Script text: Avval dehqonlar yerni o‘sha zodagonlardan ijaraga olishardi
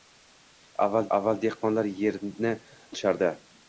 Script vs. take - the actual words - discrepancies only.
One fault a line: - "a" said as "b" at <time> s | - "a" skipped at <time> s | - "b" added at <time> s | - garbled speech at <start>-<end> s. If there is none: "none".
- "avval" added at 1.2 s
- "o‘sha zodagonlardan ijaraga" skipped at 2.5 s